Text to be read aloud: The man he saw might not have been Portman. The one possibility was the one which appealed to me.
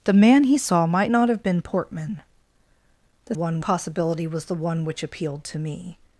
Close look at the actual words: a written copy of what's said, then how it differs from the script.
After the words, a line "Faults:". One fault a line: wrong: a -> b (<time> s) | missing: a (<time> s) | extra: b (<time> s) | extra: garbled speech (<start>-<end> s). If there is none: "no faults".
The man he saw might not have been Portman. The one possibility was the one which appealed to me.
Faults:
no faults